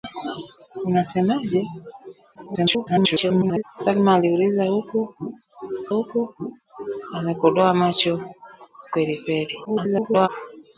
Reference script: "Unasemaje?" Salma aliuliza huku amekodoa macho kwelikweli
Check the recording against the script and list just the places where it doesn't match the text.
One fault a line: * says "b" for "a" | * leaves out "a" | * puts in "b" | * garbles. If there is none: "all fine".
* garbles
* puts in "huku"
* garbles